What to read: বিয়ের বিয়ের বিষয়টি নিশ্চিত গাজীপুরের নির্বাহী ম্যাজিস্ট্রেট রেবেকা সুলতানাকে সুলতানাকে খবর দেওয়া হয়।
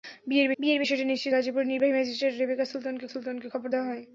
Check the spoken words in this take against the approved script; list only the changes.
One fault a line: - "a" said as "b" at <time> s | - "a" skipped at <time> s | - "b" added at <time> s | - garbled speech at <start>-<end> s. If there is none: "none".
none